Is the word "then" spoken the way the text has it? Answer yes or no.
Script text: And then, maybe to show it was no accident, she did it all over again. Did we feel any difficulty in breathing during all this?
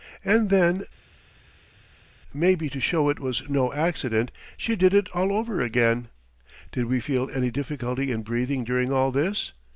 yes